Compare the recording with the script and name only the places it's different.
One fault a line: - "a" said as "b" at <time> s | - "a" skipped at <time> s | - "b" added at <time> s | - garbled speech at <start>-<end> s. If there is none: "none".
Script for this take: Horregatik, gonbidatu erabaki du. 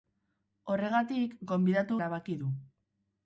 none